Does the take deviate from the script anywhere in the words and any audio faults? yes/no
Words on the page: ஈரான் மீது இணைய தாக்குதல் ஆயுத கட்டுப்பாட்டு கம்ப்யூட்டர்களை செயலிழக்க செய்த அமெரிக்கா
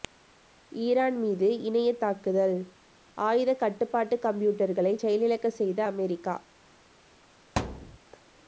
yes